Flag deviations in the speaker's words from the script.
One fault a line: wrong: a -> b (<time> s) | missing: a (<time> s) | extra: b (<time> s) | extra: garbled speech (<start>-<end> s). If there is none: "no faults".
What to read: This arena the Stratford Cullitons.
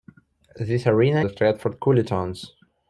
no faults